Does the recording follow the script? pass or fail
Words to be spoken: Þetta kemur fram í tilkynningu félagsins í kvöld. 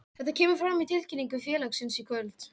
pass